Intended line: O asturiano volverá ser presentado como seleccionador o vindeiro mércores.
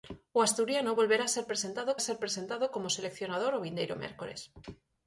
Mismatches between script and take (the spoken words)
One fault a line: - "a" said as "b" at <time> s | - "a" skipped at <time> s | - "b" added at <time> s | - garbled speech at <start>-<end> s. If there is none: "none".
- "ser presentado" added at 2.0 s